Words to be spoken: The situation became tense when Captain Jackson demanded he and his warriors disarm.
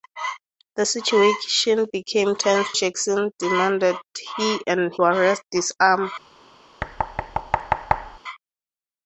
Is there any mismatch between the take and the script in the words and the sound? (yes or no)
yes